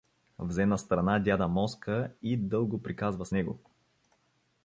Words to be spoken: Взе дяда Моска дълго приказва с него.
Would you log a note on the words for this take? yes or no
yes